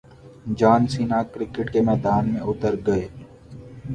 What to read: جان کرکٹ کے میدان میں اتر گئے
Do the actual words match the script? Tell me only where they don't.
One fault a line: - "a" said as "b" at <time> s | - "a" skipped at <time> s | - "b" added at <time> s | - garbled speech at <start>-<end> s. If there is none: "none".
- "سینا" added at 0.9 s